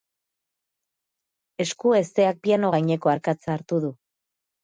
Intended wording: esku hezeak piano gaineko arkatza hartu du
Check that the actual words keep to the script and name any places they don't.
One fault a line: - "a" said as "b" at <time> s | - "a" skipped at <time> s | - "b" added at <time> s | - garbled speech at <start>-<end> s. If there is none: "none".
none